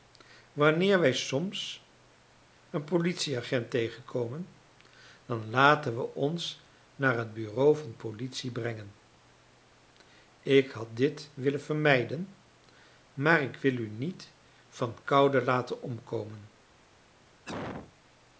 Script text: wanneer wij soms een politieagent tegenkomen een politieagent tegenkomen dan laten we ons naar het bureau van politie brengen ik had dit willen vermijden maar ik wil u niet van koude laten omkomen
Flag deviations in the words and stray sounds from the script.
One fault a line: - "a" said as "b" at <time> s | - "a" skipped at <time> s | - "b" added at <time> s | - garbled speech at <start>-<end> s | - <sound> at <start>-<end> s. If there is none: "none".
- "een politieagent tegenkomen" skipped at 4.5 s
- cough at 17.5-17.9 s